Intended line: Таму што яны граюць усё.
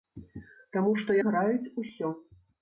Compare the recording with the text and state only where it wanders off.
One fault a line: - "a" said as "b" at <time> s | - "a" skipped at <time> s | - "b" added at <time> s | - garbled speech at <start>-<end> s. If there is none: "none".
- "яны" skipped at 1.2 s